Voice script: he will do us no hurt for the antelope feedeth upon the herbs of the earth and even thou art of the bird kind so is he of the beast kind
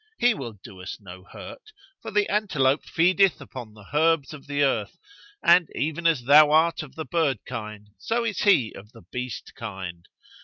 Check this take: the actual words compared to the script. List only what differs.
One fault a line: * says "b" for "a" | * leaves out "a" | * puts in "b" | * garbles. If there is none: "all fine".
* puts in "as"